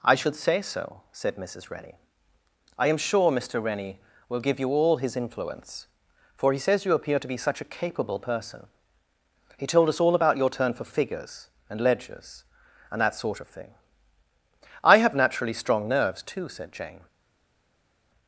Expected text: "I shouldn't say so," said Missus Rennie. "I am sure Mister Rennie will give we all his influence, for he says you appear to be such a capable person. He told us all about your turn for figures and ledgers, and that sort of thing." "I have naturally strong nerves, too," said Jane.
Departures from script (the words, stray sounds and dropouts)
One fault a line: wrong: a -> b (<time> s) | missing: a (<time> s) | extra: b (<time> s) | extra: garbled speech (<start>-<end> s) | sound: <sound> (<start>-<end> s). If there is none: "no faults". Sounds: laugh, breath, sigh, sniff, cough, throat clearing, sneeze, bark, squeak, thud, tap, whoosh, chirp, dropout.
wrong: shouldn't -> should (0.1 s)
wrong: we -> you (4.6 s)